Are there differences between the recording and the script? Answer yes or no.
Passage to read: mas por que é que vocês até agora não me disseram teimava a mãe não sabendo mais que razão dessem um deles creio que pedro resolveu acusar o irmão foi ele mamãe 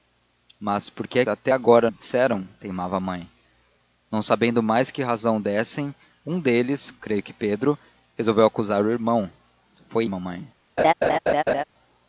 yes